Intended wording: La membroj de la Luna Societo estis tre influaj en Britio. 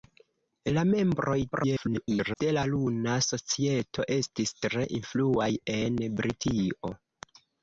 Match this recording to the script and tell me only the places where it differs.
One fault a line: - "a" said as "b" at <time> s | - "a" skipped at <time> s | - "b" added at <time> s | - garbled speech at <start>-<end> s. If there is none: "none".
- garbled speech at 1.5-2.4 s